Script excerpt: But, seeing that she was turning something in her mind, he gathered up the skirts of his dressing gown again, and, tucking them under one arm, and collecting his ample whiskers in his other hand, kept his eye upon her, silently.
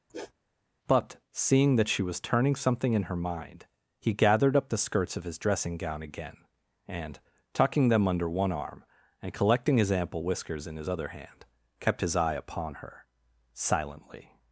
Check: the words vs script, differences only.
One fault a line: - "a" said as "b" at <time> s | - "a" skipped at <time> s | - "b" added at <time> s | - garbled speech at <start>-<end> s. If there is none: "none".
none